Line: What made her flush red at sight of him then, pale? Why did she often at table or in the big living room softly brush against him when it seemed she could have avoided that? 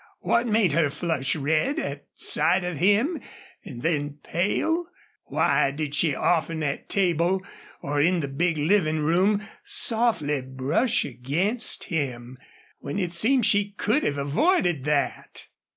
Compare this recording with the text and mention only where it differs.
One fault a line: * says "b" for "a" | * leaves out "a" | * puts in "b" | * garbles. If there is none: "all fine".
* puts in "and"